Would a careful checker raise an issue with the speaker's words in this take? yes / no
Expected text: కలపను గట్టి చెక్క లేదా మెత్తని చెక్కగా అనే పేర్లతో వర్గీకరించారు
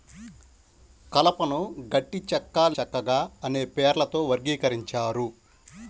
yes